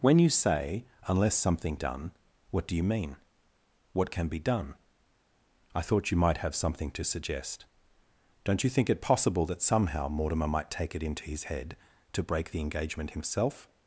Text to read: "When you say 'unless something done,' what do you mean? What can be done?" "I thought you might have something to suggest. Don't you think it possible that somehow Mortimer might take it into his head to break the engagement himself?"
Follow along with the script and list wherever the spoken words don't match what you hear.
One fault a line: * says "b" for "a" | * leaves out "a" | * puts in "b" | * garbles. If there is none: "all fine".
all fine